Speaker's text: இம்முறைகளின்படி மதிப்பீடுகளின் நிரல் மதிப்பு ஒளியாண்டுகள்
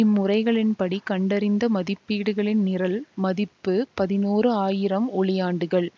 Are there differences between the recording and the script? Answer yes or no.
yes